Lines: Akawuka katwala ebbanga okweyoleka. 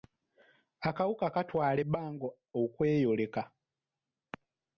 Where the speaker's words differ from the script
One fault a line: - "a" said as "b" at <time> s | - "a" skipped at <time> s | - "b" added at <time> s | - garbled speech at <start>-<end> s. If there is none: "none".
none